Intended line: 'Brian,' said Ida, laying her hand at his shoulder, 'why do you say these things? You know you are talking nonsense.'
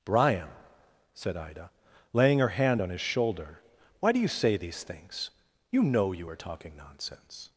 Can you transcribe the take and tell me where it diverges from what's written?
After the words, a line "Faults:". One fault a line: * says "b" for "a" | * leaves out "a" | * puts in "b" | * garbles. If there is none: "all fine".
'Brian,' said Ida, laying her hand on his shoulder, 'why do you say these things? You know you are talking nonsense.'
Faults:
* says "on" for "at"